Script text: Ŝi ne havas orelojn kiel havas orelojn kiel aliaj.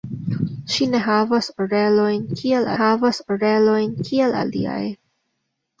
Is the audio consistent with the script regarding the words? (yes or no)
yes